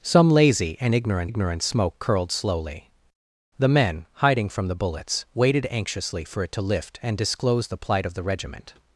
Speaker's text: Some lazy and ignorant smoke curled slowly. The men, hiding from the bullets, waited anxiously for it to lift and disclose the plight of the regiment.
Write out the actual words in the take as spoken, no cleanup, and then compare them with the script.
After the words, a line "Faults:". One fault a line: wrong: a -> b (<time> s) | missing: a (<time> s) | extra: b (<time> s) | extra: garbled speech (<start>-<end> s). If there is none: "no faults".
Some lazy and ignorant ignorant smoke curled slowly. The men, hiding from the bullets, waited anxiously for it to lift and disclose the plight of the regiment.
Faults:
extra: ignorant (1.3 s)